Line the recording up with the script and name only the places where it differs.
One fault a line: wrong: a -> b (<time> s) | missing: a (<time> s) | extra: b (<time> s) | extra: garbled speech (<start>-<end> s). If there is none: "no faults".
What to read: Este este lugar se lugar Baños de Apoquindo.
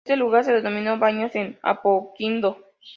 missing: este (0.1 s)
wrong: lugar -> denominó (0.5 s)